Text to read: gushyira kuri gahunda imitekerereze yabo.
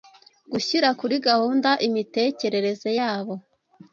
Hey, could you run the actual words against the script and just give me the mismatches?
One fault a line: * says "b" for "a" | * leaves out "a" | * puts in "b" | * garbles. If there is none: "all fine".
all fine